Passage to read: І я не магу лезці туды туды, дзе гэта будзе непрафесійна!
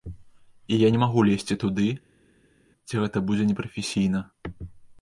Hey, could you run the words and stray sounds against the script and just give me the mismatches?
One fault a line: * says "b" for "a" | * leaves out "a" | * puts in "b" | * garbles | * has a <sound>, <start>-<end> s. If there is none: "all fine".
* leaves out "туды"